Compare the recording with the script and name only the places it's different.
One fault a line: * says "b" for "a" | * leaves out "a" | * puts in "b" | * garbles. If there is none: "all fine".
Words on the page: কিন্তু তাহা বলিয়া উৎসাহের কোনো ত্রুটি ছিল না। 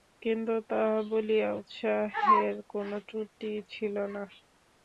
all fine